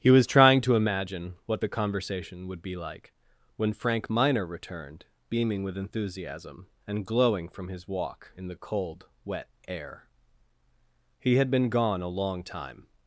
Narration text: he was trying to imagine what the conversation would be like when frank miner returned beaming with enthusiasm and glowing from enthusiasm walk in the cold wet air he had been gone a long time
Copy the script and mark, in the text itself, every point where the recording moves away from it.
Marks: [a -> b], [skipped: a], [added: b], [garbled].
he was trying to imagine what the conversation would be like when frank miner returned beaming with enthusiasm and glowing from [enthusiasm -> his] walk in the cold wet air he had been gone a long time